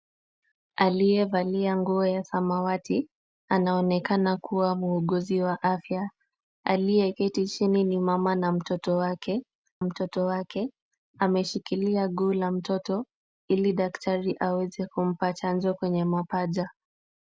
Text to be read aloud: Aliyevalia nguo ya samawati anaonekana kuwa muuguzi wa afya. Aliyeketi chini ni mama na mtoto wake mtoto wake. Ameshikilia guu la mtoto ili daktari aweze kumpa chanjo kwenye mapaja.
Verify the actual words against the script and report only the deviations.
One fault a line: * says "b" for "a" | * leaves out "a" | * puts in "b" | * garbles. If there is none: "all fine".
all fine